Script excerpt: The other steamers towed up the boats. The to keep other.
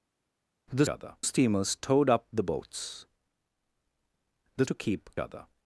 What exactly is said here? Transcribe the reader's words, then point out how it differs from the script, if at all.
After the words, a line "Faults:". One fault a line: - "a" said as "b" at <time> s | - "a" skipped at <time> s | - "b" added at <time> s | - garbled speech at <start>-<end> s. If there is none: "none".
The other steamers towed up the boats. The to keep other.
Faults:
none